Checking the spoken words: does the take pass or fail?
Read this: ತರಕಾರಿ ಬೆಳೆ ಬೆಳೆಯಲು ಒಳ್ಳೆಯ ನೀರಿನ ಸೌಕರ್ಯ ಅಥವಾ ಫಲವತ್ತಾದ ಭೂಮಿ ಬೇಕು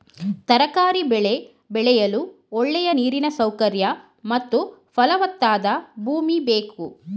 fail